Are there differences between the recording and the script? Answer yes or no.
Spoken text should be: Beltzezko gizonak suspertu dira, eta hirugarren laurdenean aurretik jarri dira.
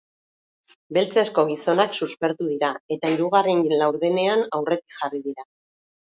no